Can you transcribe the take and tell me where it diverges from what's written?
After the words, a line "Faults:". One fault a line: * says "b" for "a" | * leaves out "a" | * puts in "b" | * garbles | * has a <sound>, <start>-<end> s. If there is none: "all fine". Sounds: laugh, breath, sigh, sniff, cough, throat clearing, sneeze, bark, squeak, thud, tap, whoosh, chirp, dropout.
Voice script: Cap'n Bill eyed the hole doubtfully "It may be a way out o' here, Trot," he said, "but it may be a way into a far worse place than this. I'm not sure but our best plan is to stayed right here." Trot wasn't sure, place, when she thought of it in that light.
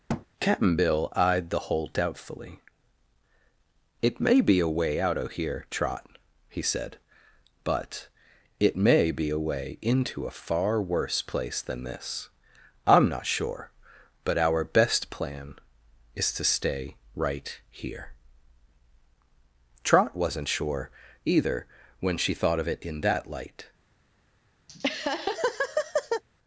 Cap'n Bill eyed the hole doubtfully "It may be a way out o' here, Trot," he said, "but it may be a way into a far worse place than this. I'm not sure but our best plan is to stay right here." Trot wasn't sure, either, when she thought of it in that light.
Faults:
* has a thud, 0.1-0.3 s
* says "stay" for "stayed"
* says "either" for "place"
* has a laugh, 24.7-26.2 s